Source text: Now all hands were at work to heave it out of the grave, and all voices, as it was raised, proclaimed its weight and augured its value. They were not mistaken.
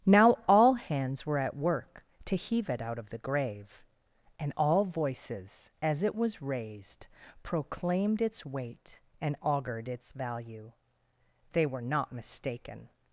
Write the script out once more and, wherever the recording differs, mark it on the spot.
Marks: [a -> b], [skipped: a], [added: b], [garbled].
Now all hands were at work to heave it out of the grave, and all voices, as it was raised, proclaimed its weight and augured its value. They were not mistaken.